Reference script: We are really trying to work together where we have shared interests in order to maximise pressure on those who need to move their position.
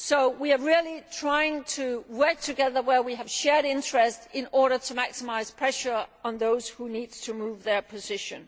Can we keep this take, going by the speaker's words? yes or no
yes